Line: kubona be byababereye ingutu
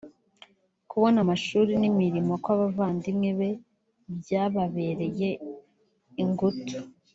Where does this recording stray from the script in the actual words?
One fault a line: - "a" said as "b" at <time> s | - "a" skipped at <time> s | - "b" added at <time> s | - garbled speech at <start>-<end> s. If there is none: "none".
- "amashuri n'imirimo kw'abavandimwe" added at 1.2 s